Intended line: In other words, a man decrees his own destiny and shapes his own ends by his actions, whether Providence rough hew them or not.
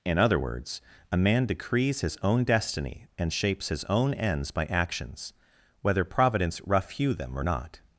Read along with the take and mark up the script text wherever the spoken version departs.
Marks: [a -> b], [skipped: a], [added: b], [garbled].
In other words, a man decrees his own destiny and shapes his own ends by [skipped: his] actions, whether Providence rough hew them or not.